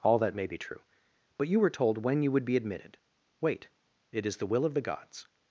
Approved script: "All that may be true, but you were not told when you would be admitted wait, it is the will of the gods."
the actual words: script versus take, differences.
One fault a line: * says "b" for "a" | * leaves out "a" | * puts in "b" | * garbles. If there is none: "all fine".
* leaves out "not"